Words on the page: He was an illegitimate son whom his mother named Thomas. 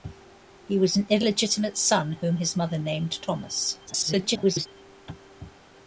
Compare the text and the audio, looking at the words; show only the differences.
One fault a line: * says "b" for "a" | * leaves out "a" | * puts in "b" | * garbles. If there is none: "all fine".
* garbles